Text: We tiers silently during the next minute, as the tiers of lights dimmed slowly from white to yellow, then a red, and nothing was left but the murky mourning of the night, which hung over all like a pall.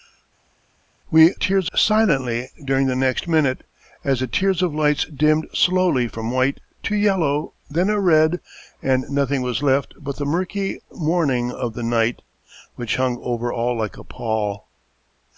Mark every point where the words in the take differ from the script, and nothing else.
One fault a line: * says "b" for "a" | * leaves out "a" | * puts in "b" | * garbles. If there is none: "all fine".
all fine